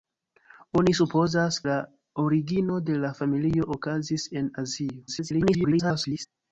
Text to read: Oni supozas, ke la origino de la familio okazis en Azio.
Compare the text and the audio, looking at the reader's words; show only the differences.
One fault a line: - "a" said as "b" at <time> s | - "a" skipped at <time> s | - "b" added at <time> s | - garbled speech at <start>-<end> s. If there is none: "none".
- "ke" skipped at 1.6 s
- garbled speech at 5.1-6.3 s